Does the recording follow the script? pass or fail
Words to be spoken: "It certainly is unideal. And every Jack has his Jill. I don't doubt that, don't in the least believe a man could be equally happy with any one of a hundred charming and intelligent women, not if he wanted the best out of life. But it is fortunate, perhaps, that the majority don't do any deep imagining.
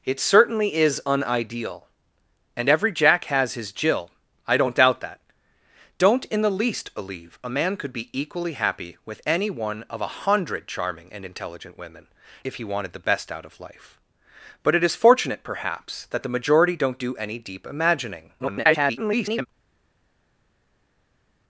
fail